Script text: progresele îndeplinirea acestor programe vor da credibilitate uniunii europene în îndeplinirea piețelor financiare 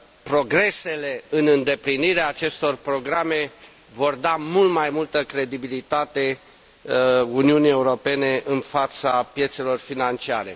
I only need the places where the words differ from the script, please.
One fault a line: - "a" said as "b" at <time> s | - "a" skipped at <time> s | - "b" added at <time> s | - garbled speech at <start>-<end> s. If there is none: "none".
- "în" added at 1.3 s
- "mult mai multă" added at 4.4 s
- "îndeplinirea" said as "fața" at 8.6 s